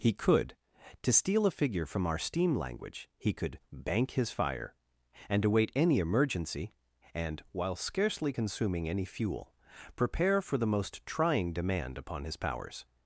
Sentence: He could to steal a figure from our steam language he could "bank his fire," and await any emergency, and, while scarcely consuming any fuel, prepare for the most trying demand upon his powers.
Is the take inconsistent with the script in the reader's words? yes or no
no